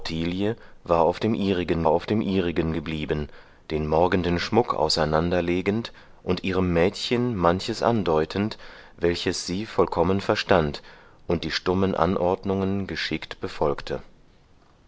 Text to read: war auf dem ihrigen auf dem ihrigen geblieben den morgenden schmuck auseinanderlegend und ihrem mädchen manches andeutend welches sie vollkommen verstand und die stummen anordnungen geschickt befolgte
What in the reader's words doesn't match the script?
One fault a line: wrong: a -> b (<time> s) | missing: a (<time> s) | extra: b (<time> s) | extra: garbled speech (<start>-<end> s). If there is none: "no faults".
no faults